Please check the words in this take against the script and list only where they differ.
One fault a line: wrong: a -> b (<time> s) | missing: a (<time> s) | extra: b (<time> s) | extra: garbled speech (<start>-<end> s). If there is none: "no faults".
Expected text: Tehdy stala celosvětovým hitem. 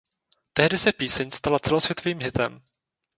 extra: se píseň (0.8 s)